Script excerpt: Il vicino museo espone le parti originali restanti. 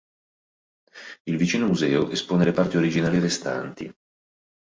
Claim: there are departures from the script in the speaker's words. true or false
false